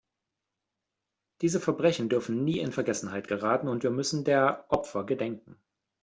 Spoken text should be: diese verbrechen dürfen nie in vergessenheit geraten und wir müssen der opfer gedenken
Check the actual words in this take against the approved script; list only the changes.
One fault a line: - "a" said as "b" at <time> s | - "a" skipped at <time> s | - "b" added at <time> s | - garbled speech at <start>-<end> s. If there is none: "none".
none